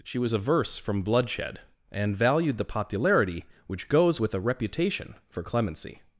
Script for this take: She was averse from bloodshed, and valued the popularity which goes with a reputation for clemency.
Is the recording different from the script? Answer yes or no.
no